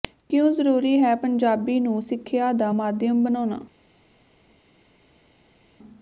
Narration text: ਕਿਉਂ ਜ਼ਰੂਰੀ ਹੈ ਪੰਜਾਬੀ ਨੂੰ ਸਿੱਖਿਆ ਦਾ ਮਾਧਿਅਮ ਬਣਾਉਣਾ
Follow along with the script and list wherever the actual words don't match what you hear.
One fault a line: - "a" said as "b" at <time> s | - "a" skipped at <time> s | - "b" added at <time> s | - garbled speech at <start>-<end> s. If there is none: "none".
none